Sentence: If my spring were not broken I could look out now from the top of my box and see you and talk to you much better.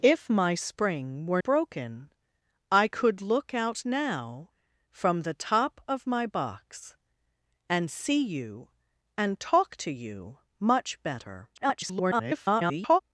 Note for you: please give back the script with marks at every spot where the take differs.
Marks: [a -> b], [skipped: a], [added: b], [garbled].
If my spring were [skipped: not] broken I could look out now from the top of my box and see you and talk to you much better. [garbled]